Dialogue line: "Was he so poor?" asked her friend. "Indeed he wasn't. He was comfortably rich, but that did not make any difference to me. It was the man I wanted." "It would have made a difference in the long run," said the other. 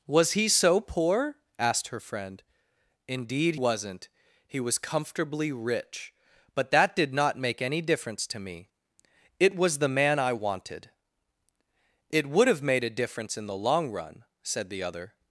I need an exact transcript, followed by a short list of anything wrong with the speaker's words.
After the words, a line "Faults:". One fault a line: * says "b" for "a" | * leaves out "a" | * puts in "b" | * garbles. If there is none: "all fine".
"Was he so poor?" asked her friend. "Indeed wasn't. He was comfortably rich, but that did not make any difference to me. It was the man I wanted." "It would have made a difference in the long run," said the other.
Faults:
* leaves out "he"